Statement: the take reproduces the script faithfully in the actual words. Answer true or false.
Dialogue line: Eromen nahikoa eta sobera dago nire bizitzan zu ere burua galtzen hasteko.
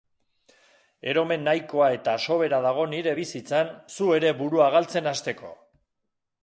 true